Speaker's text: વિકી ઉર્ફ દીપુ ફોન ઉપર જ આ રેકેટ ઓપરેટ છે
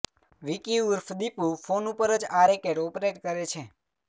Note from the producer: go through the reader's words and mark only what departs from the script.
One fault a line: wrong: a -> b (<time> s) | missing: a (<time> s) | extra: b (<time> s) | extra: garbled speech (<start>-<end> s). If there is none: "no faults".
extra: કરે (3.2 s)